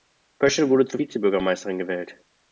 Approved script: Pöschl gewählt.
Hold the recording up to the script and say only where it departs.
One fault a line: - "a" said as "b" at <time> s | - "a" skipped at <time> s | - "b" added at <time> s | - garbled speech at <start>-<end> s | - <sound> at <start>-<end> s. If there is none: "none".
- "wurde zur Vizebürgermeisterin" added at 0.7 s